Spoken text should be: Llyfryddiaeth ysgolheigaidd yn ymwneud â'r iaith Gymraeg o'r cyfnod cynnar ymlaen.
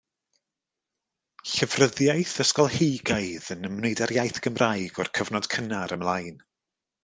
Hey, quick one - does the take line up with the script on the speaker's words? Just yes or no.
yes